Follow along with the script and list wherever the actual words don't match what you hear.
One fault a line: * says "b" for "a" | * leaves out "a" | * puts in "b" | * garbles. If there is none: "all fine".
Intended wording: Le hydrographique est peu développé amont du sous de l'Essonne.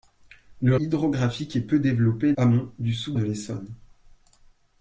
all fine